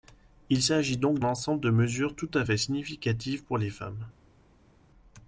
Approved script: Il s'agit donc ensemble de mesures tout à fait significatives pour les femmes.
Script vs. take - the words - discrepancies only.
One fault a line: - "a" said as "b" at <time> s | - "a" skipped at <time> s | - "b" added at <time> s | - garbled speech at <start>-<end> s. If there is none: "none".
none